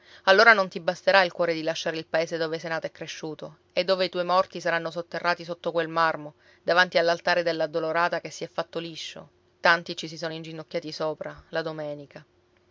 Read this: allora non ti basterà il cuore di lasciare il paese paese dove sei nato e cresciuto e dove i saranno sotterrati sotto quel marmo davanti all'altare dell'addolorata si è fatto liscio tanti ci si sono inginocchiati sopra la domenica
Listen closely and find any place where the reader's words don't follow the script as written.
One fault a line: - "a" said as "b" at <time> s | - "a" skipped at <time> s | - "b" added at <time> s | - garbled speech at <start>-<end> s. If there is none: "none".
- "paese" skipped at 2.4 s
- "tuoi morti" added at 4.1 s
- "che" added at 8.2 s